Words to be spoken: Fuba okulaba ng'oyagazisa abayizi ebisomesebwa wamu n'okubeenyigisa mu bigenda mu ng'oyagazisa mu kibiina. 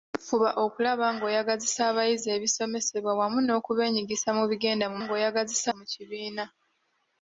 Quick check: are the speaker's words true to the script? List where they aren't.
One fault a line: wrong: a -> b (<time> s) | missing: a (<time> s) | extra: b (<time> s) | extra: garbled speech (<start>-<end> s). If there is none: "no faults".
no faults